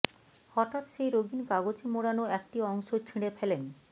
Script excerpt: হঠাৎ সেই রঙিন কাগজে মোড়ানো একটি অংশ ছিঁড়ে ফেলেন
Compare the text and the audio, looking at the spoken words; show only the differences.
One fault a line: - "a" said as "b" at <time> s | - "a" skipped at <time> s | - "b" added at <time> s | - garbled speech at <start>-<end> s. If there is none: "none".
none